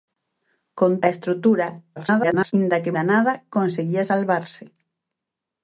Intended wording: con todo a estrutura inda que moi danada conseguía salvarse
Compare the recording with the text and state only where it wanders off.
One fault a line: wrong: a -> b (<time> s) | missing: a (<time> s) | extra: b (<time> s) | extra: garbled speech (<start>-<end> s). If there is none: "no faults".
missing: todo (0.9 s)
extra: garbled speech (2.0-2.5 s)
missing: moi (3.0 s)